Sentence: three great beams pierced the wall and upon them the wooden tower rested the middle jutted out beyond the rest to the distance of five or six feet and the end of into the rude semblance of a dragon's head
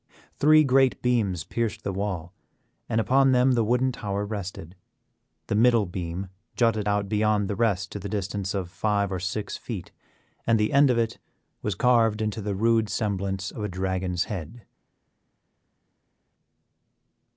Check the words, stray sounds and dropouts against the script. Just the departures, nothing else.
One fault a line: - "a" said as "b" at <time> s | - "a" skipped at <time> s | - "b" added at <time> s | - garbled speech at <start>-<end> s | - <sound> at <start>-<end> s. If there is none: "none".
- "beam" added at 5.8 s
- "it was carved" added at 11.0 s